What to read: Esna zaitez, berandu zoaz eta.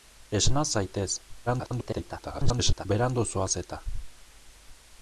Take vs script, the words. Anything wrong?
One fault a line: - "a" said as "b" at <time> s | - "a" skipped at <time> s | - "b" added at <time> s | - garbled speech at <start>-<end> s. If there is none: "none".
- garbled speech at 1.5-2.9 s